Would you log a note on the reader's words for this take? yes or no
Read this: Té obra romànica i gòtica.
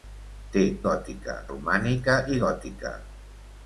yes